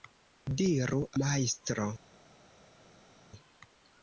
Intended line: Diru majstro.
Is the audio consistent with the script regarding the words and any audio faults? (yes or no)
yes